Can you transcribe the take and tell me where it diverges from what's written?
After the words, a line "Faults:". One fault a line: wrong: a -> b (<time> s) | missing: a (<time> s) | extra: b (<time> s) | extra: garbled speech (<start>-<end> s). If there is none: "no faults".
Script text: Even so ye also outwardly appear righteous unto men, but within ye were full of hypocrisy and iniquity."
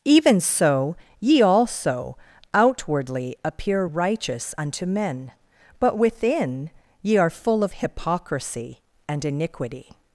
Even so ye also outwardly appear righteous unto men, but within ye are full of hypocrisy and iniquity."
Faults:
wrong: were -> are (7.2 s)